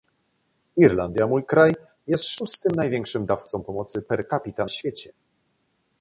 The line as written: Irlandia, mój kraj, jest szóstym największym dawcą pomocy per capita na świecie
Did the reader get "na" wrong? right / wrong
wrong